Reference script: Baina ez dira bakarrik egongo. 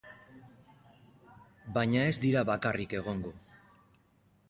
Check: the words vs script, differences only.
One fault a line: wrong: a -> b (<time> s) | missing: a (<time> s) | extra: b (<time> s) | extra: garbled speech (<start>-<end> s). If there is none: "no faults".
no faults